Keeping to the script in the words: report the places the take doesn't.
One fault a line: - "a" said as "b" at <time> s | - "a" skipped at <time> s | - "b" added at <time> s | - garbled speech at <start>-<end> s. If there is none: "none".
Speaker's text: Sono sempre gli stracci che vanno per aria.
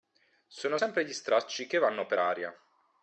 none